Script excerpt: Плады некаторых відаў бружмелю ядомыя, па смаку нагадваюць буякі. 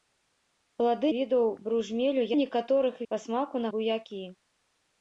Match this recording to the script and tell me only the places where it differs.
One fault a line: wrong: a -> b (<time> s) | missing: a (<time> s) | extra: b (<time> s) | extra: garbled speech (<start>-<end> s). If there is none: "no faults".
missing: некаторых (1.1 s)
wrong: ядомыя -> некаторых (2.4 s)
missing: нагадваюць (3.7 s)